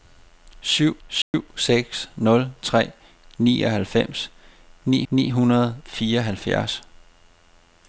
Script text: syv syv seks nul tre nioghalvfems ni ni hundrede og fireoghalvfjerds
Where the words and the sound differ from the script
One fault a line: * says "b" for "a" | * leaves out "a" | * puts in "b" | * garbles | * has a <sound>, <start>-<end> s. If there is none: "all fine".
* has a dropout, 1.2-1.3 s